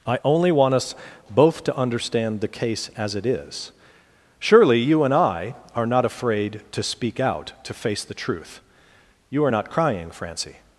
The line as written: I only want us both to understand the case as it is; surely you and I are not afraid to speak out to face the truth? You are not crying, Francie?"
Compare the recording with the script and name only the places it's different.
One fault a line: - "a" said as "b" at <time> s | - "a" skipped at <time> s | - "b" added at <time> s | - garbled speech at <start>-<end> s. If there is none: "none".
none